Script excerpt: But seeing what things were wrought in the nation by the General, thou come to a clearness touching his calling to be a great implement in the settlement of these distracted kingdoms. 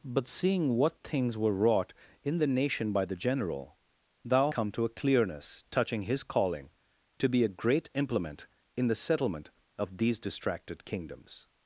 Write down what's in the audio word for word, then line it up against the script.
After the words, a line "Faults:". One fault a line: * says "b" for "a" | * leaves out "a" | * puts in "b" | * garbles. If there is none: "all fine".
But seeing what things were wrought in the nation by the General, thou come to a clearness touching his calling to be a great implement in the settlement of these distracted kingdoms.
Faults:
all fine